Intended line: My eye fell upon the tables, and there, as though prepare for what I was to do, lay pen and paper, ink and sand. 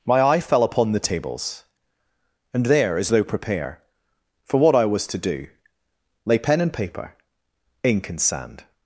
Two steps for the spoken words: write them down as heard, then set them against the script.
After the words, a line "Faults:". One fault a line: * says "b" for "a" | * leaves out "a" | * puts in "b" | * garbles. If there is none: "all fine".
My eye fell upon the tables, and there, as though prepare for what I was to do, lay pen and paper, ink and sand.
Faults:
all fine